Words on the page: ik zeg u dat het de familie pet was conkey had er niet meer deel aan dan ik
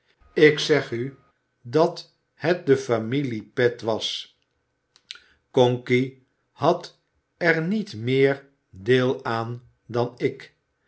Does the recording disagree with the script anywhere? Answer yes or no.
no